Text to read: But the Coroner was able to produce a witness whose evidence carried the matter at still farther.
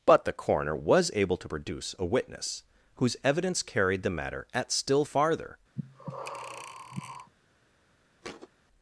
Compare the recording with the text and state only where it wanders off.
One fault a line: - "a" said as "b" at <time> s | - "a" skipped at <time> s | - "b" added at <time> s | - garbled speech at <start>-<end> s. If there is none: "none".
none